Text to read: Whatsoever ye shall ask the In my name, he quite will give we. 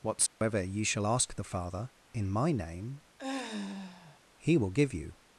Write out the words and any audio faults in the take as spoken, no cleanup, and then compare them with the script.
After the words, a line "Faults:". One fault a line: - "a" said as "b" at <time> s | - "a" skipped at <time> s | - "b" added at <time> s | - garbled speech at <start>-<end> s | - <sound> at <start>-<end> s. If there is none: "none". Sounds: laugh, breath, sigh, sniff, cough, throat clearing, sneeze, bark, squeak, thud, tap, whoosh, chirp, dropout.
Whatsoever ye shall ask the Father, in my name, he will give you.
Faults:
- dropout at 0.3-0.4 s
- "Father" added at 1.4 s
- sigh at 3.2-4.2 s
- "quite" skipped at 4.6 s
- "we" said as "you" at 4.9 s